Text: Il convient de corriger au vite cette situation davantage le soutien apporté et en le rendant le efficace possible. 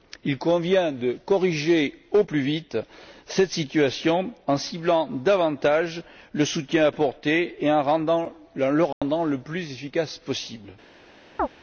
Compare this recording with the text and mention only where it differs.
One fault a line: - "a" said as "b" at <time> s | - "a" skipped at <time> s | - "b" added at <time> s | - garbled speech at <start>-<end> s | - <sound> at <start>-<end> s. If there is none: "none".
- "plus" added at 2.2 s
- "en ciblant" added at 4.5 s
- dropout at 8.9-9.0 s
- "plus" added at 9.4 s
- chirp at 11.4-11.5 s